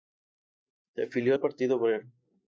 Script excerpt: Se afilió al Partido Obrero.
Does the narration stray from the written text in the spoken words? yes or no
no